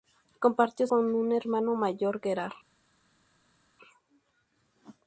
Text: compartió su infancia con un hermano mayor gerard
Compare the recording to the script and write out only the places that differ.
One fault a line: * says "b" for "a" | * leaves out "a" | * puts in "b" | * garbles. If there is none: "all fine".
* leaves out "su infancia"